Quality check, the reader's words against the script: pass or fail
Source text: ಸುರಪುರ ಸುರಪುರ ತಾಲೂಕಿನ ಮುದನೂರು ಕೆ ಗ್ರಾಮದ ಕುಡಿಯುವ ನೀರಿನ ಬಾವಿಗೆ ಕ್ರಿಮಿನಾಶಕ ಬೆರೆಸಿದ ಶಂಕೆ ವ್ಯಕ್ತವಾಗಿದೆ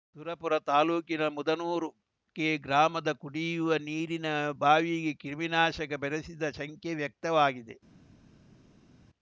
fail